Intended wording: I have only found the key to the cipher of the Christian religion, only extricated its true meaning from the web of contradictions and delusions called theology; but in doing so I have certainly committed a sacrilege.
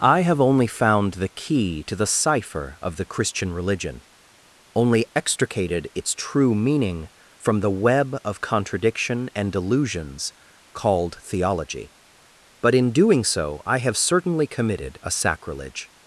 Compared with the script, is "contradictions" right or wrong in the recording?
wrong